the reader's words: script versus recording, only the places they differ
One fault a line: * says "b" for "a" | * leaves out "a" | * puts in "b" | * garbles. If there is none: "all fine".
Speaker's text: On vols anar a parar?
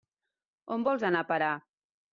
all fine